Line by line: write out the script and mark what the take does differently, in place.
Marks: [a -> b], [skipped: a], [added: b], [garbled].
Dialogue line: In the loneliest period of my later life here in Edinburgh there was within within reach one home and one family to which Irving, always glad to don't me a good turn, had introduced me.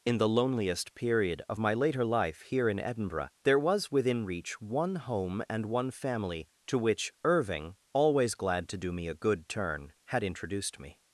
In the loneliest period of my later life here in Edinburgh there was within [skipped: within] reach one home and one family to which Irving, always glad to [don't -> do] me a good turn, had introduced me.